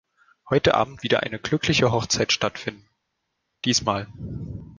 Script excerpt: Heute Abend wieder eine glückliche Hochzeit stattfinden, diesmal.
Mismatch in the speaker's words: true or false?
false